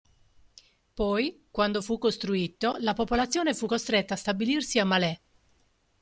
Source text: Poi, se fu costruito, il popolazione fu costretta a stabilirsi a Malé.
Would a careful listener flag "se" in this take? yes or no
yes